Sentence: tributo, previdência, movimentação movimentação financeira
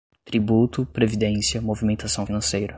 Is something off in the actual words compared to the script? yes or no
yes